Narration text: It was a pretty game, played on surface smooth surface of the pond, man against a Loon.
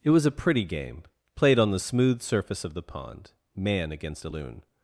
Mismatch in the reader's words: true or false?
true